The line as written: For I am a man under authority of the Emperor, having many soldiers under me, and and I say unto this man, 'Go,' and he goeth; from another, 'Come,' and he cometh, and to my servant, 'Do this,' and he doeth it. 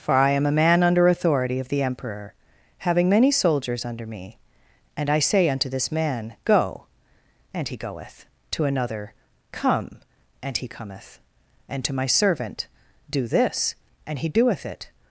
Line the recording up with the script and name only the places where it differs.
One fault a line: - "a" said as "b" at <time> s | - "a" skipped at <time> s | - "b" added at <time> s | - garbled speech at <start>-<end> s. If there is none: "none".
- "and" skipped at 5.1 s
- "from" said as "to" at 8.5 s